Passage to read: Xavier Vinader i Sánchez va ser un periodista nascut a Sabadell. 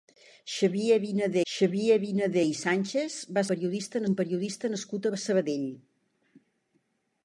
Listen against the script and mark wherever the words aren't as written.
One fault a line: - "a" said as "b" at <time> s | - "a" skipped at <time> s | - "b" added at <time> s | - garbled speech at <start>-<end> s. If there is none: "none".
- "xavier Vinader" added at 1.5 s
- "ser" said as "periodista" at 3.5 s